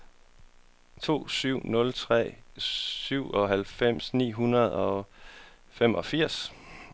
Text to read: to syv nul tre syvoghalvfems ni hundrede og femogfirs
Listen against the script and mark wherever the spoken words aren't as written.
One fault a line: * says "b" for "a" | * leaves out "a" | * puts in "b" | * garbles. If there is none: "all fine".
all fine